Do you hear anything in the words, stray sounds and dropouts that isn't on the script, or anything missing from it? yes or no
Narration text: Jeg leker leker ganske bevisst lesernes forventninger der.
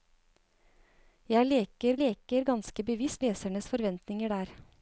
no